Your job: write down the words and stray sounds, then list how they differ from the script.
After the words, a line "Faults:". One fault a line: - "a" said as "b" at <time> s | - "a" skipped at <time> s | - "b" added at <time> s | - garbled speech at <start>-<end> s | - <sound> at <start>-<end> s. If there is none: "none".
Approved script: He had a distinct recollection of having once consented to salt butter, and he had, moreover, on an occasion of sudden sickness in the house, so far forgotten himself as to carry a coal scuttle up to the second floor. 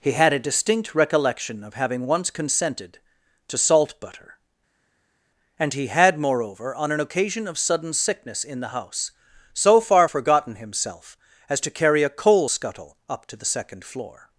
He had a distinct recollection of having once consented to salt butter, and he had, moreover, on an occasion of sudden sickness in the house, so far forgotten himself as to carry a coal scuttle up to the second floor.
Faults:
none